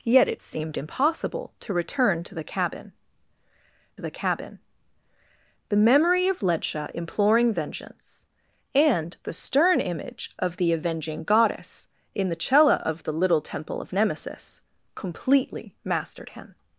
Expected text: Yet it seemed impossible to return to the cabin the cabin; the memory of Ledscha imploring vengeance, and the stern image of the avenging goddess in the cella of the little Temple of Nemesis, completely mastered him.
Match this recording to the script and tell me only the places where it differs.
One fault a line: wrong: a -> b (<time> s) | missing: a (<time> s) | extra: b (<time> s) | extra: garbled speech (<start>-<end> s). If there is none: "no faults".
no faults